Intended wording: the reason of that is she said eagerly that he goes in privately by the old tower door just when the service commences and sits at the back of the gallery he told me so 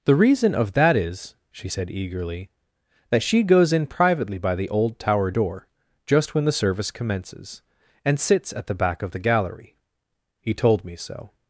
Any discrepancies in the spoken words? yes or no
yes